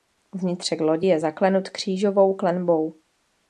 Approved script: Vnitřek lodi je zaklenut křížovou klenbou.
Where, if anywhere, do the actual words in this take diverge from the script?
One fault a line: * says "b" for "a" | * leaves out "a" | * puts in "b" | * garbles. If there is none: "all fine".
all fine